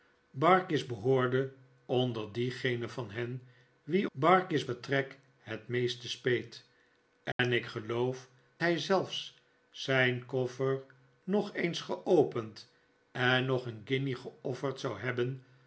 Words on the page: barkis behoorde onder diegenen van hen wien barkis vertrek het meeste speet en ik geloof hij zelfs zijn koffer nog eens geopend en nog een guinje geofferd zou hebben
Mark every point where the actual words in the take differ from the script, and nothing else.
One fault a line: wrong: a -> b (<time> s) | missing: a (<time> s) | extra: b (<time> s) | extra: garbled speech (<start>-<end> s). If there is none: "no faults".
no faults